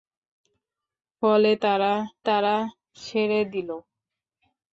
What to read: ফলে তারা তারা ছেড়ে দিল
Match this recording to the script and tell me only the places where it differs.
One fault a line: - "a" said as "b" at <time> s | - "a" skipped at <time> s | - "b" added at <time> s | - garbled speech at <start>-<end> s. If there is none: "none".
none